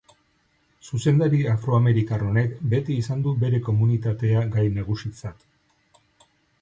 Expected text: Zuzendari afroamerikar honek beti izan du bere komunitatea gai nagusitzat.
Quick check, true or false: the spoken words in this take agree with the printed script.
true